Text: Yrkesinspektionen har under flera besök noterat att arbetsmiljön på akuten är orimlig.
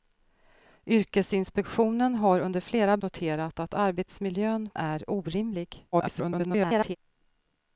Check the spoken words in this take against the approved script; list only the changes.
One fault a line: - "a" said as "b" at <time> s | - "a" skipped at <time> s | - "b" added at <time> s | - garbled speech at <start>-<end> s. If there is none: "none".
- "besök" skipped at 3.0 s
- "på akuten" skipped at 4.7 s
- garbled speech at 5.9-7.0 s